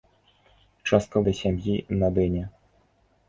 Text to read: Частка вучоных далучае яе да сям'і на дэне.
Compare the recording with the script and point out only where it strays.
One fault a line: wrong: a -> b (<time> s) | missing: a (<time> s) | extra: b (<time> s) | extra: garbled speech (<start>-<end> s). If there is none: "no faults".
missing: вучоных далучае яе (1.2 s)